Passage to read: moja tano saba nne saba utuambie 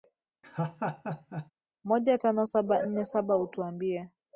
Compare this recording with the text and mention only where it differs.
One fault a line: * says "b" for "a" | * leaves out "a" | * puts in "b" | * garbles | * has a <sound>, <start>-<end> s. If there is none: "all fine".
* has a laugh, 0.4-1.5 s